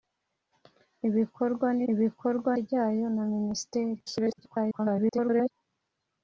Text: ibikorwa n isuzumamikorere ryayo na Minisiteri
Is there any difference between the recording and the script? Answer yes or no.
yes